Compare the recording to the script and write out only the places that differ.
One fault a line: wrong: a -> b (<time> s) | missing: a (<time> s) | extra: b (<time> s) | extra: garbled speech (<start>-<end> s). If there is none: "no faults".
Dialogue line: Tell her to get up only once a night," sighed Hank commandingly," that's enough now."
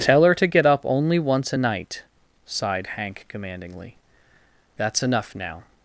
no faults